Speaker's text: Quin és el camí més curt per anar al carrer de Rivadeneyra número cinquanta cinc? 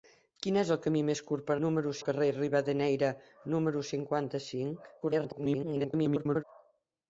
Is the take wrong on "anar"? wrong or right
wrong